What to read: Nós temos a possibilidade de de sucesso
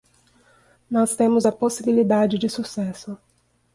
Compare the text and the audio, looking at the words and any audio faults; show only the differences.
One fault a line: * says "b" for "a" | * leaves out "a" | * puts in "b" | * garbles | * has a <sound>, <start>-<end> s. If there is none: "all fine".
* leaves out "de"